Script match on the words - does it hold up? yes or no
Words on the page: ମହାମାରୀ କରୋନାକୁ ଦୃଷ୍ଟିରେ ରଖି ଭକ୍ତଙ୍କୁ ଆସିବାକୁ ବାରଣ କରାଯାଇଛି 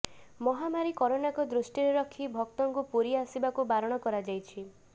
no